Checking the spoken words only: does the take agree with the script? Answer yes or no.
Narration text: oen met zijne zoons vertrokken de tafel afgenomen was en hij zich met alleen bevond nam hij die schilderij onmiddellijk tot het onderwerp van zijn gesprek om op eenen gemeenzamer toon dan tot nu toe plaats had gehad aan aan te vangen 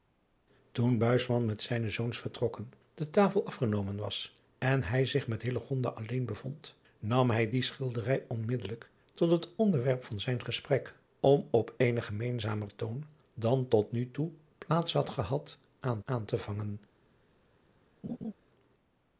yes